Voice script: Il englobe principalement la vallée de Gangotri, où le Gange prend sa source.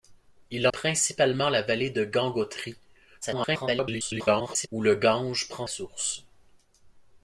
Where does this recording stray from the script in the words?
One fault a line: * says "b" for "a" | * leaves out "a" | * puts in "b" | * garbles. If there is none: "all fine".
* leaves out "englobe"
* garbles
* leaves out "sa"